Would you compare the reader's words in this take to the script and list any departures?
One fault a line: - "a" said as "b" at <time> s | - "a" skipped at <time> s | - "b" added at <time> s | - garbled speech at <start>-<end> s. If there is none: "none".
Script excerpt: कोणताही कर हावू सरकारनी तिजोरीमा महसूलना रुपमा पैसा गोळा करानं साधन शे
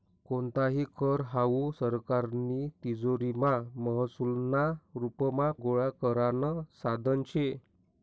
- "पैसा" skipped at 5.5 s